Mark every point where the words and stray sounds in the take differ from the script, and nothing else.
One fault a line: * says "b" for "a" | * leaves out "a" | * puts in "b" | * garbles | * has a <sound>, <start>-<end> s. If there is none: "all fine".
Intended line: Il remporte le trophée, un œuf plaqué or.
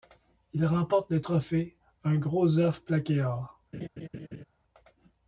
* puts in "gros"
* has a laugh, 3.7-4.4 s